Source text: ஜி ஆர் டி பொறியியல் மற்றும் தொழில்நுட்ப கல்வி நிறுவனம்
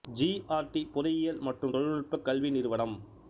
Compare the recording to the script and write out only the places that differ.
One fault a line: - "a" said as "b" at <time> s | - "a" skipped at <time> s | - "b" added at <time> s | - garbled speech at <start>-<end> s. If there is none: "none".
none